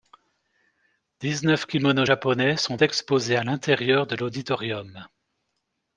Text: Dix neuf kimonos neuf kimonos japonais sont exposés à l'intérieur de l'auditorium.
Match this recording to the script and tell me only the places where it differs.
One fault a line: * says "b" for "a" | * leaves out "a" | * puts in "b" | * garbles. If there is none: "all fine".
* leaves out "neuf kimonos"